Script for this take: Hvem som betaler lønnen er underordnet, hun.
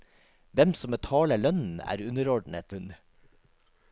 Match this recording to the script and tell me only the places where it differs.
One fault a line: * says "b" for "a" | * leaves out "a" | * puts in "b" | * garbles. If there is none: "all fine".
all fine